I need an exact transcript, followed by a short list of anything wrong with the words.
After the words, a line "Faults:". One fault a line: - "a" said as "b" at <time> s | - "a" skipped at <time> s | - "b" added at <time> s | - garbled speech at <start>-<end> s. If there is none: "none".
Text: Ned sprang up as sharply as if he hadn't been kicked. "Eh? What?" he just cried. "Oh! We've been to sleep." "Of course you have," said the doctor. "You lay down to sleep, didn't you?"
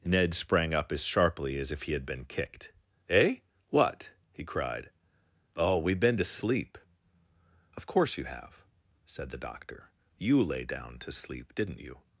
Ned sprang up as sharply as if he had been kicked. "Eh? What?" he cried. "Oh! We've been to sleep." "Of course you have," said the doctor. "You lay down to sleep, didn't you?"
Faults:
- "hadn't" said as "had" at 1.9 s
- "just" skipped at 4.4 s